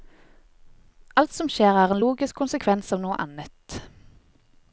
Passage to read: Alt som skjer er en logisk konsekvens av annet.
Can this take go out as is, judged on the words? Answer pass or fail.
fail